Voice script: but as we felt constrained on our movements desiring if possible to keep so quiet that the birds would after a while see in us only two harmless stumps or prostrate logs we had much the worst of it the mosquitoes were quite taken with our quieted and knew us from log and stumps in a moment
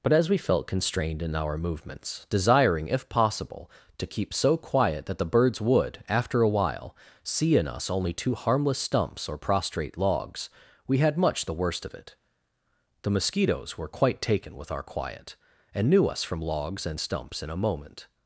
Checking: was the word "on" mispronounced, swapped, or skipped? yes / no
yes